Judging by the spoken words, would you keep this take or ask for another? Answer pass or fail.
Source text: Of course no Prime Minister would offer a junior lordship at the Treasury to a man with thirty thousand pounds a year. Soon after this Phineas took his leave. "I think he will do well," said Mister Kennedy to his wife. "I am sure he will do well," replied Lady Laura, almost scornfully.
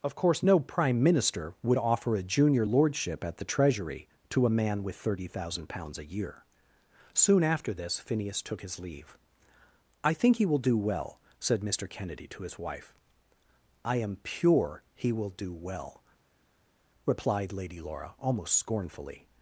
fail